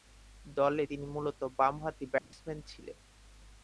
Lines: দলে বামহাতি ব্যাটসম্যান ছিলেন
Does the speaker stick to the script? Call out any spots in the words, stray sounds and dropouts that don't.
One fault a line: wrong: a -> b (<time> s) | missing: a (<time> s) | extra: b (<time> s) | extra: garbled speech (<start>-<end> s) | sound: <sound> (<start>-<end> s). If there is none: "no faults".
extra: তিনি মূলতঃ (0.9 s)
sound: dropout (2.2-2.3 s)